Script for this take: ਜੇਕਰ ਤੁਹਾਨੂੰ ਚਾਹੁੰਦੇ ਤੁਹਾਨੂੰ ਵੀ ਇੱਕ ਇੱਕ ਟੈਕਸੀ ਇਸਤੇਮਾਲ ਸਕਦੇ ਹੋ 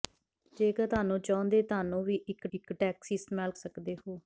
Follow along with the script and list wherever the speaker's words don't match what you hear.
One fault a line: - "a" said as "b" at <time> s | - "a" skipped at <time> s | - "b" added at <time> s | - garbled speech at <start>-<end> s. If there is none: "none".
none